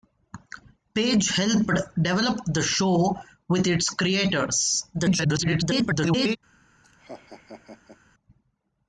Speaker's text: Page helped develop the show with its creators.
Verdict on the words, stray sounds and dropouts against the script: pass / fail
fail